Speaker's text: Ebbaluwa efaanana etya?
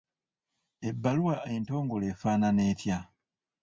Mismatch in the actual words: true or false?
true